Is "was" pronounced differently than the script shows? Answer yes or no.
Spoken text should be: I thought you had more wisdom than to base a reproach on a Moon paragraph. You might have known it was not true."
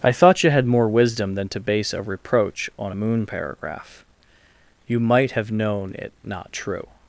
yes